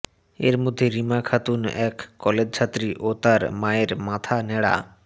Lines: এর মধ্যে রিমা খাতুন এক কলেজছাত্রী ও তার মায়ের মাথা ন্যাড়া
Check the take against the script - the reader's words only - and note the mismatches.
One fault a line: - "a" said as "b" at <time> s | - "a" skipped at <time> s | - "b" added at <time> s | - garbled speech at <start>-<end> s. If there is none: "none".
none